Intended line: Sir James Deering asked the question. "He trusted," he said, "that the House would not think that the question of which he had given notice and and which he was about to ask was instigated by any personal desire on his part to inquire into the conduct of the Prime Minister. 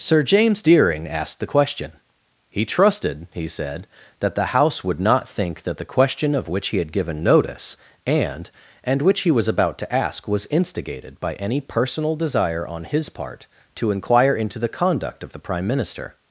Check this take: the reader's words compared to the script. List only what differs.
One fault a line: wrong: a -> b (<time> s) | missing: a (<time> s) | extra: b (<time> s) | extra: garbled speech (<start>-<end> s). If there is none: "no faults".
no faults